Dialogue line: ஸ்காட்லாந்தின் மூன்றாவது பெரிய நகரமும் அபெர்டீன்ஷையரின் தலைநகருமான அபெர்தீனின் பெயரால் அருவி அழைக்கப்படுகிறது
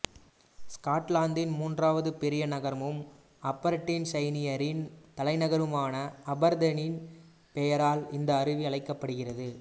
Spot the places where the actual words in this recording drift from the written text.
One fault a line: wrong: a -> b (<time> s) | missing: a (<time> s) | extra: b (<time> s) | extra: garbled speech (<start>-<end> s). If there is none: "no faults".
extra: இந்த (8.1 s)